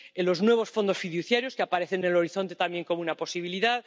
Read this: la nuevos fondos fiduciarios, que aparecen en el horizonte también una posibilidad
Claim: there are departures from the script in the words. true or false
true